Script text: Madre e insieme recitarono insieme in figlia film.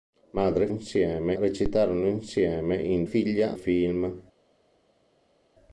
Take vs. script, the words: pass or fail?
pass